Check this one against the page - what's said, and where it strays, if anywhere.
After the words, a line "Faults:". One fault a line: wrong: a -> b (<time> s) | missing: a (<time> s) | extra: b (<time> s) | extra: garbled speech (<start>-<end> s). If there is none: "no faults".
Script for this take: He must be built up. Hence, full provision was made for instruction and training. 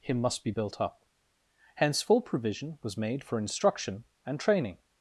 He must be built up. Hence, full provision was made for instruction and training.
Faults:
no faults